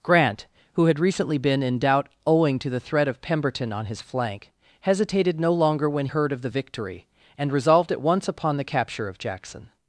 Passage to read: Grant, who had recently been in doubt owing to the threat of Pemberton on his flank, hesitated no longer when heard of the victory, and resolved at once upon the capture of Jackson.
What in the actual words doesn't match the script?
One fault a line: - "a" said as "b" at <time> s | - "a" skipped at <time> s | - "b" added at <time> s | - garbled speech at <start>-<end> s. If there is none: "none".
none